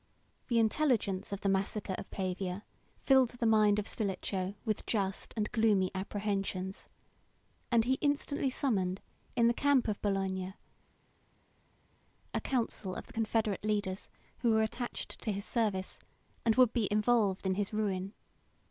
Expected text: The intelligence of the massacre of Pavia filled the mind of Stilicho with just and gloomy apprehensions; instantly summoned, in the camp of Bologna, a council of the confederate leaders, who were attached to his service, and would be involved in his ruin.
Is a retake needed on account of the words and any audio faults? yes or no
yes